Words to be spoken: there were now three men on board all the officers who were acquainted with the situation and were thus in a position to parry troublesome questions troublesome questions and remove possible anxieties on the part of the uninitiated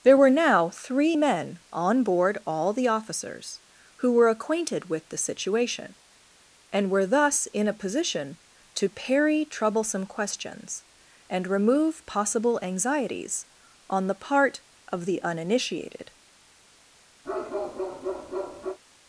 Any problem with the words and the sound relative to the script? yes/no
yes